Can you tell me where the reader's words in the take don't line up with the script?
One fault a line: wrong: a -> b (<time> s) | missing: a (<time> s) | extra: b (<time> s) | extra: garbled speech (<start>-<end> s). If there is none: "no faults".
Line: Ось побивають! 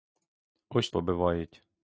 no faults